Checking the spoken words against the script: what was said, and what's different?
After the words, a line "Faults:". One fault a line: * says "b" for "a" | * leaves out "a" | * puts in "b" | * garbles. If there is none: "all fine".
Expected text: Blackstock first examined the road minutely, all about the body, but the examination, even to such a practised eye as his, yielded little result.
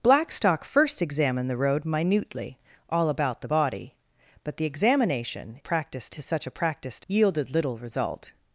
Blackstock first examined the road minutely, all about the body, but the examination, practised to such a practised yielded little result.
Faults:
* says "practised" for "even"
* leaves out "eye as his"